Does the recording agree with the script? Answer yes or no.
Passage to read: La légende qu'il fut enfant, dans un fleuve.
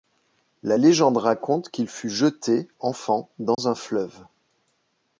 no